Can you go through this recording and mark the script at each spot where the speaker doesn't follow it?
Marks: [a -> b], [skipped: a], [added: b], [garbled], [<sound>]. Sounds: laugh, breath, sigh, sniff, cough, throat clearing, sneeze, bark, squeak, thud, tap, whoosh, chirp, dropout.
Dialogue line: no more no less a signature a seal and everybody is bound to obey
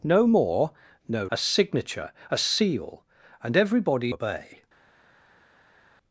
no more no [skipped: less] a signature a seal and everybody [skipped: is bound to] obey